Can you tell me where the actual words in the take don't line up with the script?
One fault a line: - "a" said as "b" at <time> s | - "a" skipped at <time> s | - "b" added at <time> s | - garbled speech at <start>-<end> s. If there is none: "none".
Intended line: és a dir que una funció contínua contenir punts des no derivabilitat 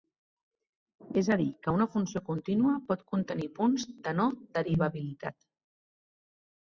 - "pot" added at 2.9 s
- "des" said as "de" at 4.1 s